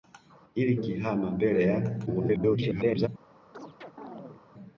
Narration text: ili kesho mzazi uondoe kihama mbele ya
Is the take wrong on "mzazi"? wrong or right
wrong